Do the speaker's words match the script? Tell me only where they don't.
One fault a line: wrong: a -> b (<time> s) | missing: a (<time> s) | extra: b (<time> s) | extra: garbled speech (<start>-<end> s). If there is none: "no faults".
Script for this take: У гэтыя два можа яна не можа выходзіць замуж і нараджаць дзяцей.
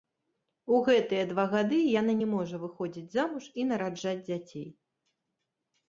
wrong: можа -> гады (1.5 s)